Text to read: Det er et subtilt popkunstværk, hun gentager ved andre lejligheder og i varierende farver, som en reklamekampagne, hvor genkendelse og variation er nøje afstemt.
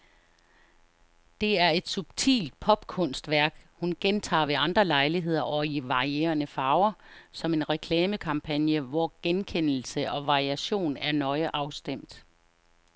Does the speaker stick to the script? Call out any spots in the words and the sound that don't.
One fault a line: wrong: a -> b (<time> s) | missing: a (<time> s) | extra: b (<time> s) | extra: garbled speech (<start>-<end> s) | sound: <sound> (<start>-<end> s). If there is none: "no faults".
no faults